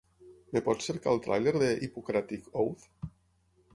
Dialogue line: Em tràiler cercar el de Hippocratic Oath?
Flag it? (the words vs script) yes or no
yes